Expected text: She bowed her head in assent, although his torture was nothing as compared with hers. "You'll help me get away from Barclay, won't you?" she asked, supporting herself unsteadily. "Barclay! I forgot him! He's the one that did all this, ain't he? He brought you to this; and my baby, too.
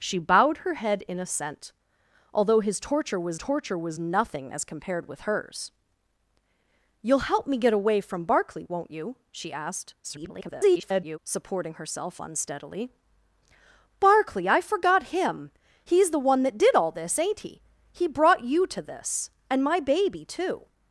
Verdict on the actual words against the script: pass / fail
fail